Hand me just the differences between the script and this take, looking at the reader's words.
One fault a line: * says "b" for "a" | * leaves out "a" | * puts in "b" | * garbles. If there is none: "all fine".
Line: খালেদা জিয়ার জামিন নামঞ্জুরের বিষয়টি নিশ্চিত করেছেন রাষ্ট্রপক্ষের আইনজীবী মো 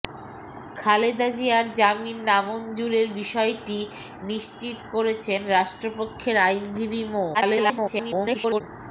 * garbles